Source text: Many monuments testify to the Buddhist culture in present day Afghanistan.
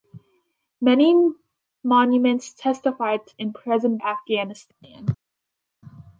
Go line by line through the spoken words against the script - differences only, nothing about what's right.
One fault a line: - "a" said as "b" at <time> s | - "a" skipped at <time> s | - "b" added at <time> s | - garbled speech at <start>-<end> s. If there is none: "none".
- "the Buddhist culture" skipped at 3.4 s
- "day" skipped at 4.0 s